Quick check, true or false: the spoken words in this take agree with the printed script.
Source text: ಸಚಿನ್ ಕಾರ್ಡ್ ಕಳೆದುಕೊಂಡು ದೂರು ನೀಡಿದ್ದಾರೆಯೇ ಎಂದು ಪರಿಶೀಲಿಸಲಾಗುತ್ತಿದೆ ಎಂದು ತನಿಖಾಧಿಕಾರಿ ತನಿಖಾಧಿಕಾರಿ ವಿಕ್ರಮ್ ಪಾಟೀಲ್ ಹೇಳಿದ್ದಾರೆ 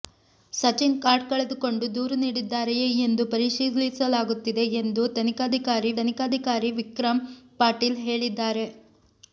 true